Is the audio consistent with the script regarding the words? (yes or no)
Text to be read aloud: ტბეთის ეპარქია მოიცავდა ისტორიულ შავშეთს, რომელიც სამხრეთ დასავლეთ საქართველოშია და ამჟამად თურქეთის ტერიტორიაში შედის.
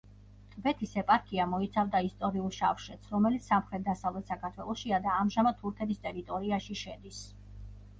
yes